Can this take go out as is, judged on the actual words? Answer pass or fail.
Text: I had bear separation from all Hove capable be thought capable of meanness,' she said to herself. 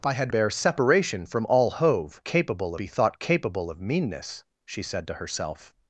pass